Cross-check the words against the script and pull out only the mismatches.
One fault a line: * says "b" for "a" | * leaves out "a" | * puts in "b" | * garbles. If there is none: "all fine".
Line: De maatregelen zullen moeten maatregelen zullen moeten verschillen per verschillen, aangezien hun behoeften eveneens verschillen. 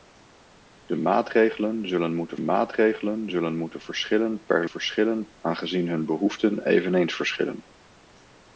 all fine